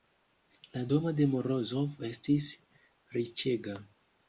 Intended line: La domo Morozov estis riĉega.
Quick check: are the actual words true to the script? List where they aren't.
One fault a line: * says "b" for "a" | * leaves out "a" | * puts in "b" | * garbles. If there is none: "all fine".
* puts in "de"